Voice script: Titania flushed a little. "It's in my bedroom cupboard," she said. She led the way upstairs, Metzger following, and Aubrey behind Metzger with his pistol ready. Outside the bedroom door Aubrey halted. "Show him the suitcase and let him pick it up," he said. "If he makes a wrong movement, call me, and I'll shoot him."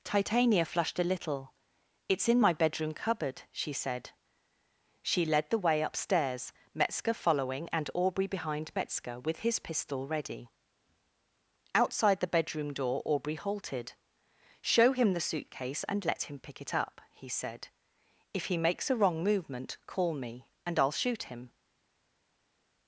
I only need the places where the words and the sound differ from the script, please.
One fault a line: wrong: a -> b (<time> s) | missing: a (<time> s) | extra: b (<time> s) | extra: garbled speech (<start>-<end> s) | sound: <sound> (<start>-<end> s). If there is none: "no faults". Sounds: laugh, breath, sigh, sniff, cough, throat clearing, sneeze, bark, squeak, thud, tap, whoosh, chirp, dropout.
no faults